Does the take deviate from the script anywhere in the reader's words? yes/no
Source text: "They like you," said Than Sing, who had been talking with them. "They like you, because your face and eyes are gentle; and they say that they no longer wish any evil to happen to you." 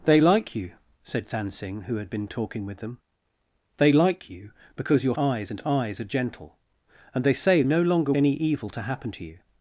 yes